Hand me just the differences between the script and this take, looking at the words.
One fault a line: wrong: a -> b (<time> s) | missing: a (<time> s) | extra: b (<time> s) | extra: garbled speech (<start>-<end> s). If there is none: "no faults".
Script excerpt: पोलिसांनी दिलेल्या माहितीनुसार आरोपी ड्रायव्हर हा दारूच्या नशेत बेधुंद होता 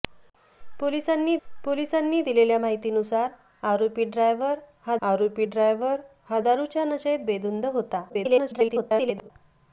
extra: पोलिसांनी (1.5 s)
extra: आरोपी ड्रायव्हर हा (5.0 s)
extra: garbled speech (8.1-9.3 s)